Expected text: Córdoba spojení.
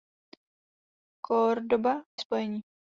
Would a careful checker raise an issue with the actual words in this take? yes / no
no